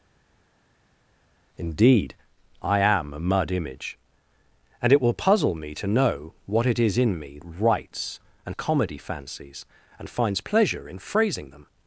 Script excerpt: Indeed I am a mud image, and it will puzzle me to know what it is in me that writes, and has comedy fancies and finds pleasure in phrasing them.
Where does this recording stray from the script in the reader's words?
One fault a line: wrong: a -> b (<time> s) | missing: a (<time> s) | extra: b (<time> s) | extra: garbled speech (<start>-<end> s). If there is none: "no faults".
missing: that (7.4 s)
missing: has (8.6 s)